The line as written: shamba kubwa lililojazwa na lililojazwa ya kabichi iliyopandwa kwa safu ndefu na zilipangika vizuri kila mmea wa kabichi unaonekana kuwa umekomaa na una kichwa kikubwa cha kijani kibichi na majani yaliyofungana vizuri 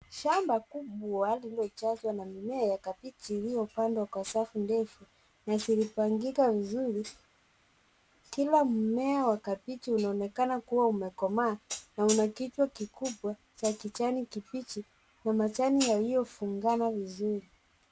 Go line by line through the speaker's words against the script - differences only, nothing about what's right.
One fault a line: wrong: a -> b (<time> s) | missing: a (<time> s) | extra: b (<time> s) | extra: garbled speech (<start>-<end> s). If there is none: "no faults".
wrong: lililojazwa -> mimea (2.2 s)